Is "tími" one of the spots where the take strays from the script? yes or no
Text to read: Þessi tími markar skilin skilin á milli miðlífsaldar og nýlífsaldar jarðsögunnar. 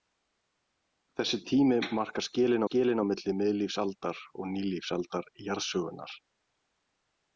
no